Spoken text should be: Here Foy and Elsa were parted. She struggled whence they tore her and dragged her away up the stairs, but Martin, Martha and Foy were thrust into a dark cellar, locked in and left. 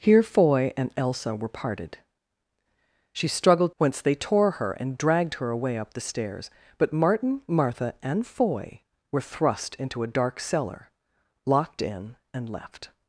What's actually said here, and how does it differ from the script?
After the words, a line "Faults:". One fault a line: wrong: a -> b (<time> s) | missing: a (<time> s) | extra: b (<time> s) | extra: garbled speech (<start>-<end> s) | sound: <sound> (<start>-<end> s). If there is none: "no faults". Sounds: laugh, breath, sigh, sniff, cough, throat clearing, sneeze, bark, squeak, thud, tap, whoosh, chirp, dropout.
Here Foy and Elsa were parted. She struggled whence they tore her and dragged her away up the stairs, but Martin, Martha and Foy were thrust into a dark cellar, locked in and left.
Faults:
no faults